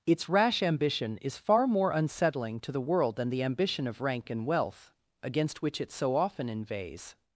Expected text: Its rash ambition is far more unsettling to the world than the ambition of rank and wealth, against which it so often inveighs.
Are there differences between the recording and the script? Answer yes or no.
no